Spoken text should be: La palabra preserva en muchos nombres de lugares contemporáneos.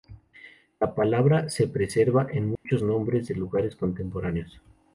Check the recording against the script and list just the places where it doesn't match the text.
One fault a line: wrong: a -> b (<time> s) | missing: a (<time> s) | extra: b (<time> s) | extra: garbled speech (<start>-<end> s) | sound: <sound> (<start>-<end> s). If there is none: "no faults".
extra: se (1.5 s)
sound: dropout (2.5-2.7 s)